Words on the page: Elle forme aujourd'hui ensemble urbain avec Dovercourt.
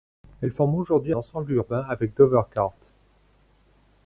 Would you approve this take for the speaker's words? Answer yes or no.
yes